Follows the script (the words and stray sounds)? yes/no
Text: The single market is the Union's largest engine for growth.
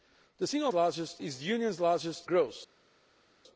no